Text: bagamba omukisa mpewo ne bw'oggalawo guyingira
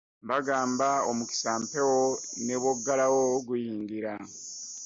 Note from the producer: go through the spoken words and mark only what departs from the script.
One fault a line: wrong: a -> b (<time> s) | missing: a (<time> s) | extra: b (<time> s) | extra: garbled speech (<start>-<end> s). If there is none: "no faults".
no faults